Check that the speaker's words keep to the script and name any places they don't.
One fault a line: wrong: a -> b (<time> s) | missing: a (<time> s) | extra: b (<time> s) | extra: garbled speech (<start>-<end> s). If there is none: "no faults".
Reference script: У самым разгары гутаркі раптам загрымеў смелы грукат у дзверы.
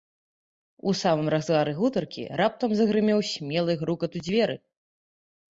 no faults